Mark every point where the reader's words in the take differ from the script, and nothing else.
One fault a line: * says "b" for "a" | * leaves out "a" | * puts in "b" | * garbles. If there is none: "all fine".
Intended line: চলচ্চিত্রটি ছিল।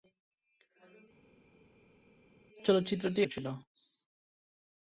all fine